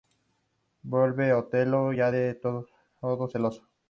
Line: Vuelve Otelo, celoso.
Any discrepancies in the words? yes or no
yes